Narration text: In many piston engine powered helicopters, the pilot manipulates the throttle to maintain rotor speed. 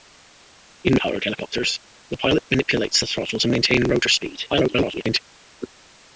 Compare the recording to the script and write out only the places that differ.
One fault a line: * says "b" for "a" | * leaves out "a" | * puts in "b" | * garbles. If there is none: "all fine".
* leaves out "many piston engine"
* garbles